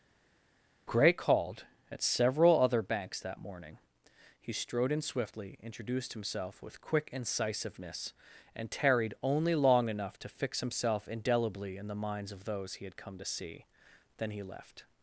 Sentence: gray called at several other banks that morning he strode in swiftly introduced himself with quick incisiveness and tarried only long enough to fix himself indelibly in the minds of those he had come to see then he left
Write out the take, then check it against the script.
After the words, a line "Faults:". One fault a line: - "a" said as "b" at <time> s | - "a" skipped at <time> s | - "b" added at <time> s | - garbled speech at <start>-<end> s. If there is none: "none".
gray called at several other banks that morning he strode in swiftly introduced himself with quick incisiveness and tarried only long enough to fix himself indelibly in the minds of those he had come to see then he left
Faults:
none